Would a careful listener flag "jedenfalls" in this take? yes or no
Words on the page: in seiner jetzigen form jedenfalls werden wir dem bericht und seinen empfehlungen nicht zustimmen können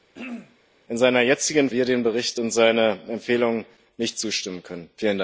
yes